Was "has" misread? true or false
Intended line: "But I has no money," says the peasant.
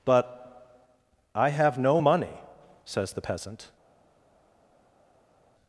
true